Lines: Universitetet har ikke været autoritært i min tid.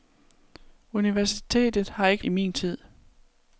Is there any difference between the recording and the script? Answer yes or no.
yes